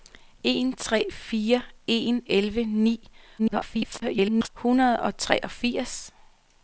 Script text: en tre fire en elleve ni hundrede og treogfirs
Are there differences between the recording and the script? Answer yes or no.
yes